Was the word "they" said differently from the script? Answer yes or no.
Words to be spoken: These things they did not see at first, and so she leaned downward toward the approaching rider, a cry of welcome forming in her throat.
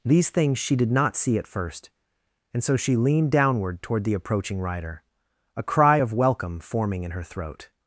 yes